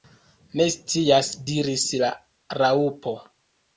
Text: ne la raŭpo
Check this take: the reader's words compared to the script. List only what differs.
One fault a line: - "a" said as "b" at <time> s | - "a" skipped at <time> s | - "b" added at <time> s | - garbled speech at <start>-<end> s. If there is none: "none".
- "scias diris" added at 0.8 s